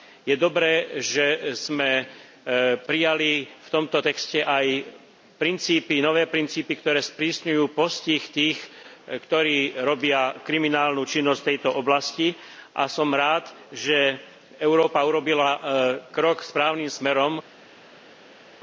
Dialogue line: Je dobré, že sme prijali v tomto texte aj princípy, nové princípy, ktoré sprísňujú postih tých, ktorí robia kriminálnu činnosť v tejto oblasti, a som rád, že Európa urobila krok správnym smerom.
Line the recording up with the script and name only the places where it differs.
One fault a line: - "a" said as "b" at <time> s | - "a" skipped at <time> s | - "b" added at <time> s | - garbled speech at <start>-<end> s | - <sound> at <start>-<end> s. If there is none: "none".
none